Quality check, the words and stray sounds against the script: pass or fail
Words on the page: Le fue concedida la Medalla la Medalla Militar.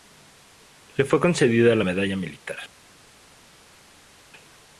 fail